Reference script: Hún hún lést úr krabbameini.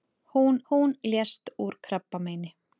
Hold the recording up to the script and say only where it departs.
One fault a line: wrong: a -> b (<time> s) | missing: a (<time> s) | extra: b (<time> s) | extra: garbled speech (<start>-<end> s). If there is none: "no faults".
no faults